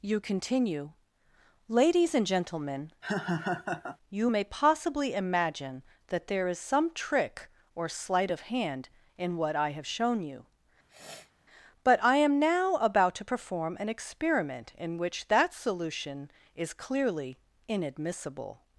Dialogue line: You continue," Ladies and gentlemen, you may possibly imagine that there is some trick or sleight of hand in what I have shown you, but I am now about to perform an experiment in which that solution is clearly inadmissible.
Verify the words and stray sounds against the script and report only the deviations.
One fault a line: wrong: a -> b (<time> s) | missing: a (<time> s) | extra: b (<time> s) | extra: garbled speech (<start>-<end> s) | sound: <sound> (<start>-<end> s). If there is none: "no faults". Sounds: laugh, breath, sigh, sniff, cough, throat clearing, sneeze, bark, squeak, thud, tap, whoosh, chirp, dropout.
sound: laugh (3.0-4.0 s)
sound: sniff (10.9-11.3 s)